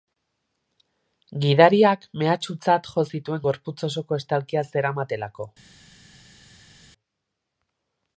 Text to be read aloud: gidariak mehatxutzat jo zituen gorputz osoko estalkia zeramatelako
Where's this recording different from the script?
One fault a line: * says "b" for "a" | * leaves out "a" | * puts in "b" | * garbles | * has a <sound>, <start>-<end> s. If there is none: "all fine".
all fine